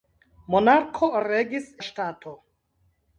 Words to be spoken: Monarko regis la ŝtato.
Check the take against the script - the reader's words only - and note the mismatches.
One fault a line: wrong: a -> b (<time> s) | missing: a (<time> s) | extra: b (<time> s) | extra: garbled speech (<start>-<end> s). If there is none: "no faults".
no faults